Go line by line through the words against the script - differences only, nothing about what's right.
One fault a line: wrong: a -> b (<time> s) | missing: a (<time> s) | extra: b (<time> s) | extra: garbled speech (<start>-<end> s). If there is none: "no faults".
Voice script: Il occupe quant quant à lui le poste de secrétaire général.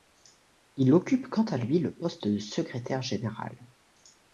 missing: quant (1.4 s)